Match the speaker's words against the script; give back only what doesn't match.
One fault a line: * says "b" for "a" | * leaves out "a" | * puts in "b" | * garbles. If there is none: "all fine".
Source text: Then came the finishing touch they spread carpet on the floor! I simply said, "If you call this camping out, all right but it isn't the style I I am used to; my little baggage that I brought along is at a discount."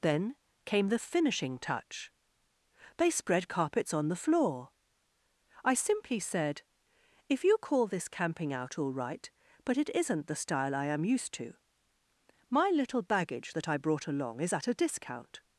* says "carpets" for "carpet"
* leaves out "I"